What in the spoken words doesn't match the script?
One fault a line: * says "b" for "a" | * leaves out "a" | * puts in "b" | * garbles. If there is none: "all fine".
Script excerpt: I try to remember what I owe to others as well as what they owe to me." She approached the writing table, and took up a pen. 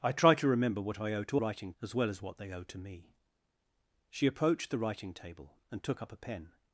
* says "writing" for "others"